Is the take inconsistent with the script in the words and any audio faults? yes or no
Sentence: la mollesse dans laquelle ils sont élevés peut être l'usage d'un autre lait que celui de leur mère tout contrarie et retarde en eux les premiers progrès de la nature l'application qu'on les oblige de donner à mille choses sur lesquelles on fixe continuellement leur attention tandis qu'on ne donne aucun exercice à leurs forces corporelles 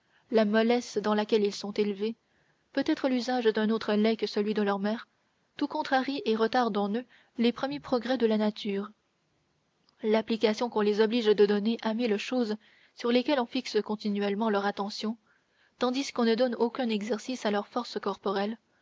no